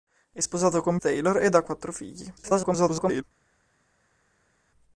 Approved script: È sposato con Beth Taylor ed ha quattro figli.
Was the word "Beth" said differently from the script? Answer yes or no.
yes